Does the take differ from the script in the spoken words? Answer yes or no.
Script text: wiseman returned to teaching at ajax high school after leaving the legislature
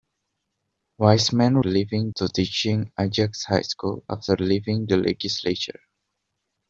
yes